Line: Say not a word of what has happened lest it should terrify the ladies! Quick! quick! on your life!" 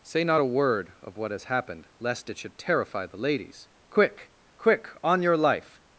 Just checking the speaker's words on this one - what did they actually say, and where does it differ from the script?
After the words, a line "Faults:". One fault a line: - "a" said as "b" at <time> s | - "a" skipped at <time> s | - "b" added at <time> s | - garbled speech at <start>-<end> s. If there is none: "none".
Say not a word of what has happened lest it should terrify the ladies! Quick! quick! on your life!"
Faults:
none